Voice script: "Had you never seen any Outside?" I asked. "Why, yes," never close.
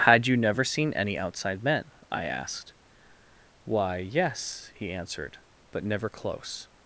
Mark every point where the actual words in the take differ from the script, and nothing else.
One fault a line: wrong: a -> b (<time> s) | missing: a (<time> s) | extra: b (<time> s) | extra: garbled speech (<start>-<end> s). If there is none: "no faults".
extra: Men (1.6 s)
extra: he answered but (4.7 s)